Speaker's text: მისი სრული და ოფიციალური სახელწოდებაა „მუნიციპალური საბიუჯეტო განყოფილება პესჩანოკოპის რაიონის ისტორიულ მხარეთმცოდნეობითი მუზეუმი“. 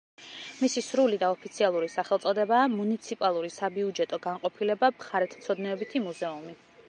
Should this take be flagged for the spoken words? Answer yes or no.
yes